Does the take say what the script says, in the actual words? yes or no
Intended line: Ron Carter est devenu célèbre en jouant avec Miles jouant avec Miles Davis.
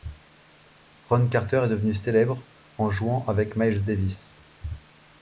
no